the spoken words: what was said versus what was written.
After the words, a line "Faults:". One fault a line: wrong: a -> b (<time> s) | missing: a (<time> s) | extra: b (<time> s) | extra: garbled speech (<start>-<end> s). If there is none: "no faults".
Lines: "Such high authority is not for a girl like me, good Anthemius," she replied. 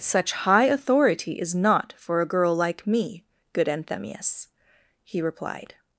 "Such high authority is not for a girl like me, good Anthemius," he replied.
Faults:
wrong: she -> he (5.0 s)